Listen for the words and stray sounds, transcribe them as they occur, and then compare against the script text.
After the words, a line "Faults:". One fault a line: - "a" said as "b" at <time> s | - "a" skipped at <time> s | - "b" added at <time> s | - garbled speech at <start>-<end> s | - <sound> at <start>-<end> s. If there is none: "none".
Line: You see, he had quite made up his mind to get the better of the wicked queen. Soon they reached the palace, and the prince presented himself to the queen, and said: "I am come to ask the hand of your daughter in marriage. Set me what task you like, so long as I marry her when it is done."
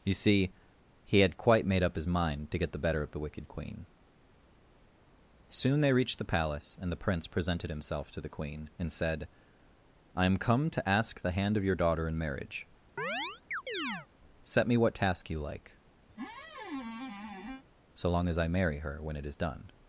You see, he had quite made up his mind to get the better of the wicked queen. Soon they reached the palace, and the prince presented himself to the queen, and said: "I am come to ask the hand of your daughter in marriage. Set me what task you like, so long as I marry her when it is done."
Faults:
- chirp at 13.0-14.1 s
- squeak at 16.1-17.6 s